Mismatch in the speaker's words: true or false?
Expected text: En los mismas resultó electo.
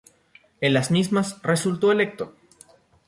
true